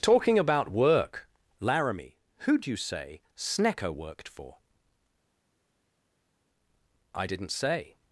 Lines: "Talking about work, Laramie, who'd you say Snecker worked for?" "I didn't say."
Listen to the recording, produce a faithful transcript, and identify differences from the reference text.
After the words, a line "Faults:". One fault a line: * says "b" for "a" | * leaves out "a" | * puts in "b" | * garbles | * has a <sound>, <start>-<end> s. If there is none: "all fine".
"Talking about work, Laramie, who'd you say Snecker worked for?" "I didn't say."
Faults:
all fine